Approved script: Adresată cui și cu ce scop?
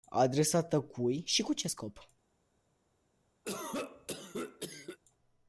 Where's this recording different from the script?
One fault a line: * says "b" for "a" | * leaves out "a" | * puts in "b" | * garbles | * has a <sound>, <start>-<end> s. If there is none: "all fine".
* has a cough, 3.4-5.0 s